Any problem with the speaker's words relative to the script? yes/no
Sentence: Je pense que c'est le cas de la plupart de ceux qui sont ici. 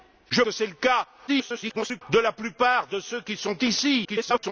yes